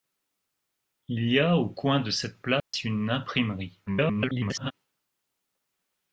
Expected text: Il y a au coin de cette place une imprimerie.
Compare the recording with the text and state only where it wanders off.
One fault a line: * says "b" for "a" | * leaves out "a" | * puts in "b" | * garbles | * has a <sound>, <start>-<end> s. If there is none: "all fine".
* has a dropout, 2.6-2.7 s
* garbles